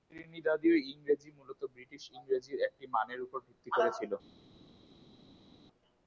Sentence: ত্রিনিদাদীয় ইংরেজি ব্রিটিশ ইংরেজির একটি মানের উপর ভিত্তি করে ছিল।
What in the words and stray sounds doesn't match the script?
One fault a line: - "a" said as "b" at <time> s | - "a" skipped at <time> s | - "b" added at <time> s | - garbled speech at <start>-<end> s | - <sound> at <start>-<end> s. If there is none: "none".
- "মূলত" added at 1.4 s